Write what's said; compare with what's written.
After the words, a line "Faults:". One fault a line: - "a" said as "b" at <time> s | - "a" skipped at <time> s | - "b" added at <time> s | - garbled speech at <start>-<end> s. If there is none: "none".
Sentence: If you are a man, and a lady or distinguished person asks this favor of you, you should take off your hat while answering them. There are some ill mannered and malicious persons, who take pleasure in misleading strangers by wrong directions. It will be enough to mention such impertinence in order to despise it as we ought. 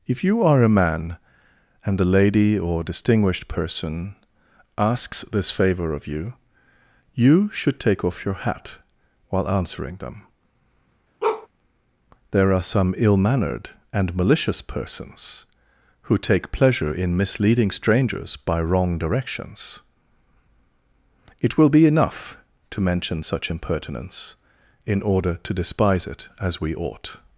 If you are a man, and a lady or distinguished person asks this favor of you, you should take off your hat while answering them. There are some ill mannered and malicious persons, who take pleasure in misleading strangers by wrong directions. It will be enough to mention such impertinence in order to despise it as we ought.
Faults:
none